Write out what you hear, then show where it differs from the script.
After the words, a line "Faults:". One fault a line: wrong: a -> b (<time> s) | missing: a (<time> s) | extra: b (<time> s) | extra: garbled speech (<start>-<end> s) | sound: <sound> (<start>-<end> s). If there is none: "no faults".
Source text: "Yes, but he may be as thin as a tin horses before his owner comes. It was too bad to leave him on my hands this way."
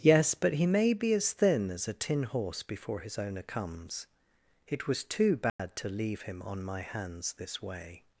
"Yes, but he may be as thin as a tin horse before his owner comes. It was too bad to leave him on my hands this way."
Faults:
wrong: horses -> horse (2.2 s)
sound: dropout (5.5-5.6 s)